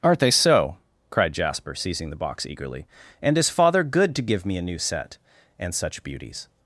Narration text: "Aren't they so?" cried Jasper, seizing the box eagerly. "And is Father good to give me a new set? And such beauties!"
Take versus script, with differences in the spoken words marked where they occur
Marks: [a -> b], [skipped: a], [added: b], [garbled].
"Aren't they so?" cried Jasper, seizing the box eagerly. "And is Father good to give me a new set? And such beauties!"